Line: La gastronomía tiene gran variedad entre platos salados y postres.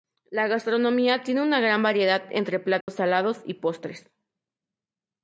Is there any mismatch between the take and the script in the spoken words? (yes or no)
yes